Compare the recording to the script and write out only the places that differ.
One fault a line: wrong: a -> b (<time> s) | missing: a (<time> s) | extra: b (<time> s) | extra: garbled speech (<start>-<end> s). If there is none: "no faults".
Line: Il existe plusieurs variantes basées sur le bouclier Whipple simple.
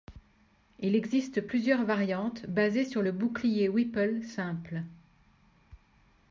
no faults